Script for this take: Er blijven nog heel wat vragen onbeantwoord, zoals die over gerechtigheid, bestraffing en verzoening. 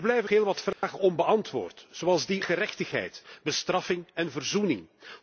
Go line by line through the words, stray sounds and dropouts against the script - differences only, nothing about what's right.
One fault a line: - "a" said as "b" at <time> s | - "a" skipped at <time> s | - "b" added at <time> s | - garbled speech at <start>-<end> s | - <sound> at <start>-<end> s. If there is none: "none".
- "nog" skipped at 0.3 s
- dropout at 0.7-0.8 s
- "over" skipped at 2.4 s